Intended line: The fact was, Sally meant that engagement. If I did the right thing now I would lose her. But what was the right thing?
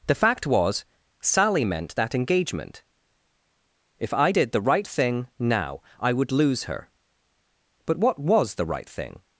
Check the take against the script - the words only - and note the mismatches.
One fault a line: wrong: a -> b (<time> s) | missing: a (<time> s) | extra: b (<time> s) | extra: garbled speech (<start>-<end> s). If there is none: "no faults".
no faults